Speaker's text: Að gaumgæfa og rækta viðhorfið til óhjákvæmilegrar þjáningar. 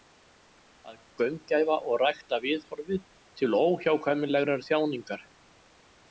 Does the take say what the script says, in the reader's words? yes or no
yes